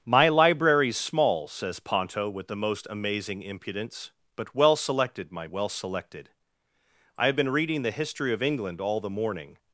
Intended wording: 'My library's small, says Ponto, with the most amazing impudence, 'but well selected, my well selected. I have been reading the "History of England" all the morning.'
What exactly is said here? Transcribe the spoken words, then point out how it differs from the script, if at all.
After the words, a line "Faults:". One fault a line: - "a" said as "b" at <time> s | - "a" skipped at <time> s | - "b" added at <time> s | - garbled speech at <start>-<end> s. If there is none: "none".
'My library's small, says Ponto, with the most amazing impudence, 'but well selected, my well selected. I have been reading the "History of England" all the morning.'
Faults:
none